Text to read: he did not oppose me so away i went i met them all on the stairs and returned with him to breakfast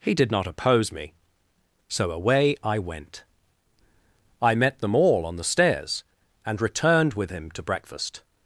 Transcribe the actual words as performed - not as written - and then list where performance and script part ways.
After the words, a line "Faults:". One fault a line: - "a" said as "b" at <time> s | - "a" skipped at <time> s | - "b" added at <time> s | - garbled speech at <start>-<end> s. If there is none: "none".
he did not oppose me so away i went i met them all on the stairs and returned with him to breakfast
Faults:
none